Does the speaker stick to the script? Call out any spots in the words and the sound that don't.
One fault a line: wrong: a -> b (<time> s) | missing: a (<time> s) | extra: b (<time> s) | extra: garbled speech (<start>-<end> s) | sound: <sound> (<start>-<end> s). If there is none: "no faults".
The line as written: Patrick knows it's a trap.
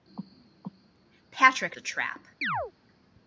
missing: knows it's (1.8 s)
sound: chirp (2.4-2.7 s)